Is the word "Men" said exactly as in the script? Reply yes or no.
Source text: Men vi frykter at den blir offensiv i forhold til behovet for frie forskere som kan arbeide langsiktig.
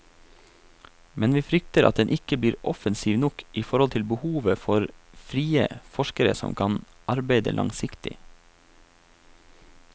yes